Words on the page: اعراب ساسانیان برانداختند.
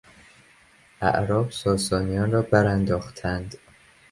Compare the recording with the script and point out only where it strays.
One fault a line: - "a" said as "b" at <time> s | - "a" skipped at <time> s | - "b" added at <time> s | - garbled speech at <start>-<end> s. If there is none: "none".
- "را" added at 2.3 s